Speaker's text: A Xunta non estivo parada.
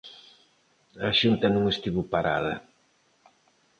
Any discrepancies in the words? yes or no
no